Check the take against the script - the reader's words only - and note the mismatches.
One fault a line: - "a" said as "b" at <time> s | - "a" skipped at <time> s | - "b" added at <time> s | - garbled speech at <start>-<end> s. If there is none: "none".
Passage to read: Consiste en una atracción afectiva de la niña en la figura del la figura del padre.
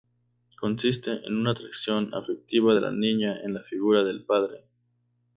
- "la figura del" skipped at 4.2 s